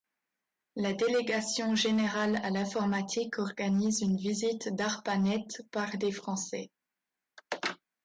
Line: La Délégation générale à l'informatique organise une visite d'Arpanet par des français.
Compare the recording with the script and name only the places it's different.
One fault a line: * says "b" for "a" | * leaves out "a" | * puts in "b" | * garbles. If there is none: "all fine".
all fine